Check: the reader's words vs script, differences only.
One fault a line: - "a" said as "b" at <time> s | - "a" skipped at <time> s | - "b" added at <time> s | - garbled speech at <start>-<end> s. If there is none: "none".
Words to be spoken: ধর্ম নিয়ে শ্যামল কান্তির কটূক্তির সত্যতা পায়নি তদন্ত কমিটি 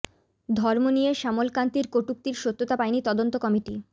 none